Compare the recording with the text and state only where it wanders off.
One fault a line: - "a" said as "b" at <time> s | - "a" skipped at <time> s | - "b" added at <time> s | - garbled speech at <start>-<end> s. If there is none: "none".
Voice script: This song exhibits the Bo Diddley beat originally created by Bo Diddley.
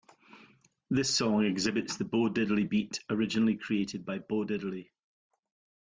none